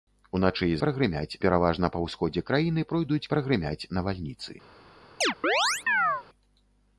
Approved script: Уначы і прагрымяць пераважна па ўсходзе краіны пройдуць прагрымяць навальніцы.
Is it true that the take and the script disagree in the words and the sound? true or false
true